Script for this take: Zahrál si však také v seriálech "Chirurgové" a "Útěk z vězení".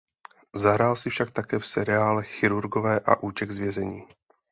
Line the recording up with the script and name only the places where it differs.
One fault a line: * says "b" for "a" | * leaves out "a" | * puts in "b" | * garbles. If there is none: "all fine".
all fine